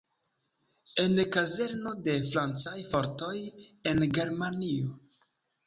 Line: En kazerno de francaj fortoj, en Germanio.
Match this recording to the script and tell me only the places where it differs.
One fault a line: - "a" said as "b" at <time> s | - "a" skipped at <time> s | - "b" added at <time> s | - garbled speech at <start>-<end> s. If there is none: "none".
none